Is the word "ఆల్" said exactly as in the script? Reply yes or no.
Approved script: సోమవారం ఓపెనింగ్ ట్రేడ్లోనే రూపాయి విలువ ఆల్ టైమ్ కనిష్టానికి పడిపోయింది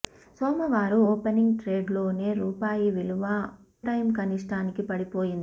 no